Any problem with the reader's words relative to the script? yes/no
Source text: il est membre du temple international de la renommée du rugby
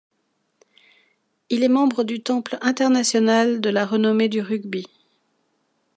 no